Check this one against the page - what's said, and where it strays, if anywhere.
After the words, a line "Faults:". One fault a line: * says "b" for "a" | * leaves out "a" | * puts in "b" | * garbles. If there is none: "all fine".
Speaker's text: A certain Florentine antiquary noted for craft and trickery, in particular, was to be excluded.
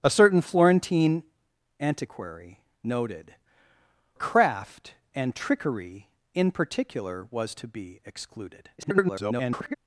A certain Florentine antiquary noted craft and trickery, in particular, was to be excluded. [garbled]
Faults:
* leaves out "for"
* garbles